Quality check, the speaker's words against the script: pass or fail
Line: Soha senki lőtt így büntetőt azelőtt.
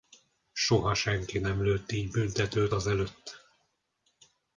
fail